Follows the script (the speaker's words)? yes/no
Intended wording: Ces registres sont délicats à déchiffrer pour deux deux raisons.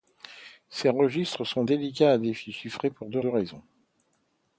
yes